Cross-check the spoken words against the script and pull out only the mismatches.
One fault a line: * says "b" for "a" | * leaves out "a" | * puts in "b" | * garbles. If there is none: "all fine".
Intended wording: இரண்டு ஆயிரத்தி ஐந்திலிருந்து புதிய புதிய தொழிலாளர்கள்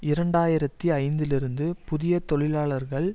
* leaves out "புதிய"